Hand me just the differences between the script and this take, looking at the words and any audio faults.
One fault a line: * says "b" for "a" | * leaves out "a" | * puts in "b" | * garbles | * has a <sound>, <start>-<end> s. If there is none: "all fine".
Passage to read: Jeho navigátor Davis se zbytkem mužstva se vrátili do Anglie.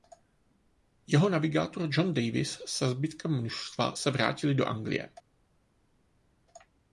* puts in "John"